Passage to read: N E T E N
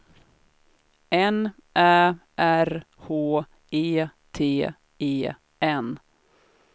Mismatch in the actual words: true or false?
true